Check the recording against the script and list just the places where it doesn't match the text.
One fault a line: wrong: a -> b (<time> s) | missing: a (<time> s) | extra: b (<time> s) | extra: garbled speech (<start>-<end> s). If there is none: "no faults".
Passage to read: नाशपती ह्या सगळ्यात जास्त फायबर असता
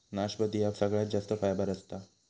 no faults